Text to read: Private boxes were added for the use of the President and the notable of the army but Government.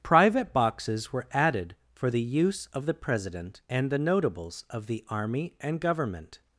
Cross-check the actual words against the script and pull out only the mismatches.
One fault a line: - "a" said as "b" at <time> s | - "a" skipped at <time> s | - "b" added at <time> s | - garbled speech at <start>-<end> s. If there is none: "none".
- "notable" said as "notables" at 4.0 s
- "but" said as "and" at 5.6 s